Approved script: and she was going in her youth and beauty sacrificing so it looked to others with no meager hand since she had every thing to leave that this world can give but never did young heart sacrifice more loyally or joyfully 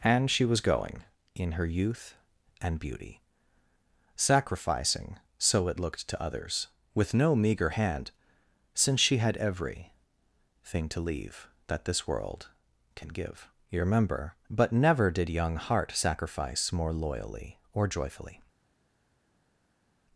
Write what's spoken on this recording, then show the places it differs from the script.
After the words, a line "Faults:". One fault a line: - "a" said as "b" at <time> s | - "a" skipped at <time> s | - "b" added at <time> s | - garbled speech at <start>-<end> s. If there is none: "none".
and she was going in her youth and beauty sacrificing so it looked to others with no meager hand since she had every thing to leave that this world can give you remember but never did young heart sacrifice more loyally or joyfully
Faults:
- "you remember" added at 13.7 s